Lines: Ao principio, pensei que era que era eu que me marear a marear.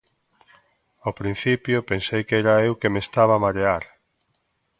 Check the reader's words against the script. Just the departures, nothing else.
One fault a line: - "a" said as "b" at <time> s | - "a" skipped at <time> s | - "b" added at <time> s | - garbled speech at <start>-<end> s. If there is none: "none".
- "que era" skipped at 2.6 s
- "marear" said as "estaba" at 3.1 s